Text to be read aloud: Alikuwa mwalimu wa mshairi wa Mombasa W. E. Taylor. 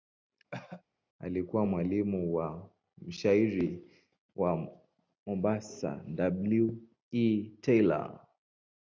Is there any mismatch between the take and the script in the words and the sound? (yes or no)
yes